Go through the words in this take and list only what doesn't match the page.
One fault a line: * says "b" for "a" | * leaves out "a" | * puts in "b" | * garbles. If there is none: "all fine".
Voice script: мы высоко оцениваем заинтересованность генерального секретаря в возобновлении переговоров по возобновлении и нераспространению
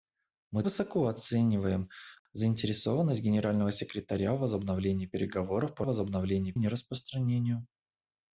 all fine